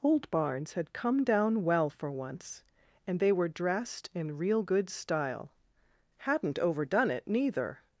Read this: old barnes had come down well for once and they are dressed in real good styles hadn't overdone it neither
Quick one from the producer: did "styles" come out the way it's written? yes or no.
no